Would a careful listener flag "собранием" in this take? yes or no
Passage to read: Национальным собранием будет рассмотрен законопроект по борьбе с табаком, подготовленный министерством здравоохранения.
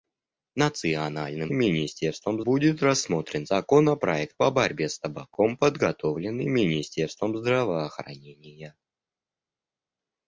yes